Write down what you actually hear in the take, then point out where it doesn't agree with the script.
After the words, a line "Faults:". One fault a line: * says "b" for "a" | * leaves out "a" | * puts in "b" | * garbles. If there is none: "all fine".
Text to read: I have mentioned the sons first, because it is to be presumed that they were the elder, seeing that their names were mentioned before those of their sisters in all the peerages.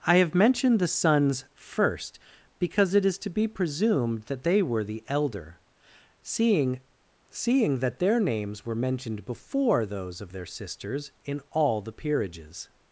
I have mentioned the sons first, because it is to be presumed that they were the elder, seeing seeing that their names were mentioned before those of their sisters in all the peerages.
Faults:
* puts in "seeing"